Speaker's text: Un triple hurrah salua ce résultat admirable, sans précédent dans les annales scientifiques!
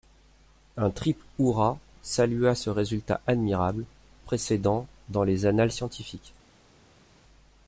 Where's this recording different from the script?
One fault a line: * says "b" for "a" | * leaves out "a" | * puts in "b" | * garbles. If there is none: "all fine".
* leaves out "sans"